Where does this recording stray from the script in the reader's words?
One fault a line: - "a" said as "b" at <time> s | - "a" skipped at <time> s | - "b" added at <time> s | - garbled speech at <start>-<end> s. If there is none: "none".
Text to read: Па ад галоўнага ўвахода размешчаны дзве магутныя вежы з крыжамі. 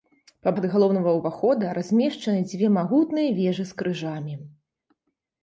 none